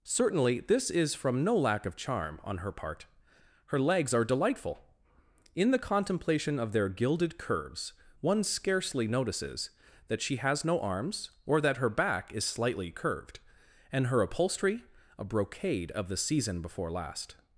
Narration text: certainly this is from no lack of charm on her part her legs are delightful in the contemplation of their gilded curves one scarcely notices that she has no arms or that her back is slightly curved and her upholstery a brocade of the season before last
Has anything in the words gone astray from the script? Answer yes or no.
no